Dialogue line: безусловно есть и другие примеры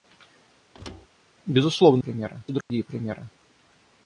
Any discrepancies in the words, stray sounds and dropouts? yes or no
yes